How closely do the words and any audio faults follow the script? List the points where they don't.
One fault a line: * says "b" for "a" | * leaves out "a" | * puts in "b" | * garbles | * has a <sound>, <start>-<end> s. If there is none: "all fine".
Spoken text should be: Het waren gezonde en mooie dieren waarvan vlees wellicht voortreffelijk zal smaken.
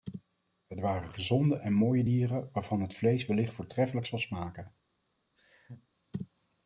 * puts in "het"
* has a laugh, 5.4-5.9 s